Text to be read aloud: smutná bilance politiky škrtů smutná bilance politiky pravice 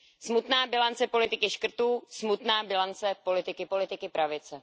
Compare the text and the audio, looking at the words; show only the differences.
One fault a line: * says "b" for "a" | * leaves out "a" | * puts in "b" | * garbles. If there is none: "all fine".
* puts in "politiky"